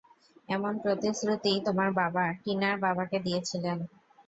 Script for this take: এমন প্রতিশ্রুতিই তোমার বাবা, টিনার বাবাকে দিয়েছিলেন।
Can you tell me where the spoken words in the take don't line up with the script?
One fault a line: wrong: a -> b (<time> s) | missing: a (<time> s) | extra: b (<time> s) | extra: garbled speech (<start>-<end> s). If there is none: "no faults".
no faults